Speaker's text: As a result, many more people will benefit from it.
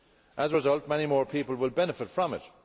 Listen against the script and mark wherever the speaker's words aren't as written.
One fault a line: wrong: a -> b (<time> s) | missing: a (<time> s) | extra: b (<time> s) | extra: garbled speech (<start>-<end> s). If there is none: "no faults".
no faults